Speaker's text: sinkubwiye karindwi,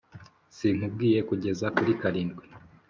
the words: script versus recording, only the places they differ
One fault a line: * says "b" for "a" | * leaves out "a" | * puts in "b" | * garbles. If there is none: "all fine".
* puts in "kugeza kuri"